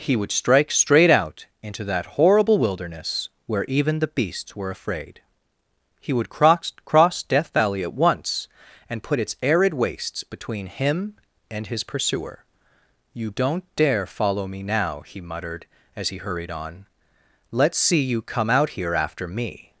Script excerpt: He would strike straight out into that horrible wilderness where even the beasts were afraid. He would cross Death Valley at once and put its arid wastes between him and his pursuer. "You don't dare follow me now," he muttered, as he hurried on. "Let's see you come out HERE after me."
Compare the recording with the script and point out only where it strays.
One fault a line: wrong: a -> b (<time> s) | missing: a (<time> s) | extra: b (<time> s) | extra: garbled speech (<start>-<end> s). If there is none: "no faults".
extra: cross (6.8 s)